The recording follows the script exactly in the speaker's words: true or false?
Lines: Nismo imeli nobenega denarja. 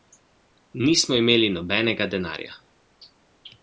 true